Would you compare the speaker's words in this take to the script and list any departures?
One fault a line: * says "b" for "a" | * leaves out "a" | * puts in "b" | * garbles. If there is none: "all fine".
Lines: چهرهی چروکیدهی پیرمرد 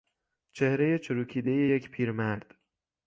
* puts in "یک"